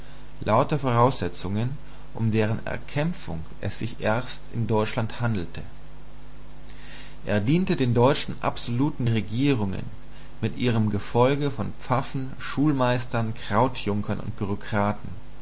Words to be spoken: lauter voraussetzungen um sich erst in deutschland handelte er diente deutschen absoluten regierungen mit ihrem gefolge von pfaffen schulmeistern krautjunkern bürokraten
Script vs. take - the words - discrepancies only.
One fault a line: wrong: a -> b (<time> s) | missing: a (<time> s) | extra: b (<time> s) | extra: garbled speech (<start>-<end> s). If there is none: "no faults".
extra: deren erkämpfung es (2.3 s)
extra: den (7.8 s)
extra: und (14.2 s)